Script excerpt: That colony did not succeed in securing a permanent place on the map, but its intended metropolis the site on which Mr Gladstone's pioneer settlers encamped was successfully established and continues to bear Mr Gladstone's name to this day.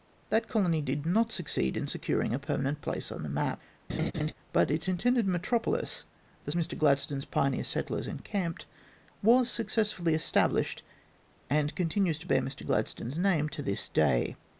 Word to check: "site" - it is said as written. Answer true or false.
false